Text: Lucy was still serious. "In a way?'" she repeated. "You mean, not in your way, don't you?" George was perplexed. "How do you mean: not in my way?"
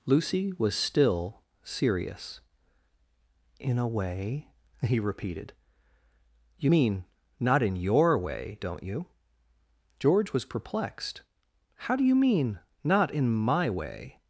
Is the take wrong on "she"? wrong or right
wrong